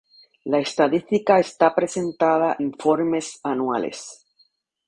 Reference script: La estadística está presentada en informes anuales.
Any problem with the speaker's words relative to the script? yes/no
yes